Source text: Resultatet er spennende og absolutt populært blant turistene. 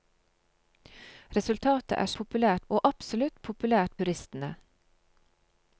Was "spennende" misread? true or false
true